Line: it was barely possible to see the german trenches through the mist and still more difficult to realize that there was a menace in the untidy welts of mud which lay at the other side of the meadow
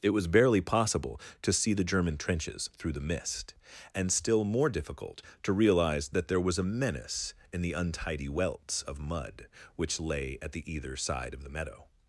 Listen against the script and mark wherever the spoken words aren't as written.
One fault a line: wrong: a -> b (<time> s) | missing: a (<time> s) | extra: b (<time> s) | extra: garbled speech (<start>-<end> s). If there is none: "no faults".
wrong: other -> either (10.7 s)